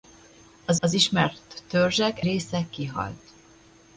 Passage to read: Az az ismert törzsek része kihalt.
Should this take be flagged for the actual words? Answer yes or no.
no